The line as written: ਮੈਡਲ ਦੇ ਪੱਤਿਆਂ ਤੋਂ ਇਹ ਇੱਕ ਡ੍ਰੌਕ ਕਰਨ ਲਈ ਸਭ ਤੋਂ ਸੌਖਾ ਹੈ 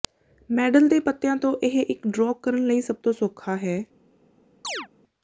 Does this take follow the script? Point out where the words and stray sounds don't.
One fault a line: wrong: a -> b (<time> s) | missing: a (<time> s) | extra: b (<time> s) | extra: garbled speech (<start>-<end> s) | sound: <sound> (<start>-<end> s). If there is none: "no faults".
sound: chirp (4.6-4.9 s)